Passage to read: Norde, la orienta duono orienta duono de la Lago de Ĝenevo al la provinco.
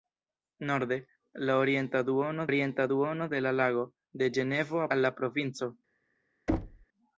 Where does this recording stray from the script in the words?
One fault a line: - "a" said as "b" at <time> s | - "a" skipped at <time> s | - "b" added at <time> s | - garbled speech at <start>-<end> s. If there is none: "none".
none